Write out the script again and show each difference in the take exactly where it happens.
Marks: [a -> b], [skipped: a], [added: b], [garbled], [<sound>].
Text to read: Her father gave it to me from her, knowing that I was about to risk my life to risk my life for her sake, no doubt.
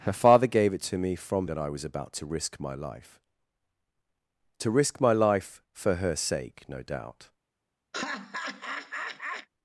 Her father gave it to me from [skipped: her, knowing] that I was about to risk my life to risk my life for her sake, no doubt. [laugh]